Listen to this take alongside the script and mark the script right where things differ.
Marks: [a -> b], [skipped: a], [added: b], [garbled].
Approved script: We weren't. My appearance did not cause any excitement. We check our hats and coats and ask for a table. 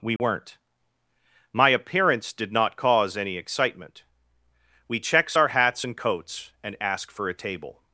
We weren't. My appearance did not cause any excitement. We [check -> checks] our hats and coats and ask for a table.